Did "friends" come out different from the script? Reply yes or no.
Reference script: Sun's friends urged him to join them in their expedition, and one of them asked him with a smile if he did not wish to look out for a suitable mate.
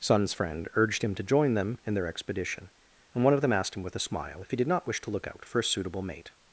yes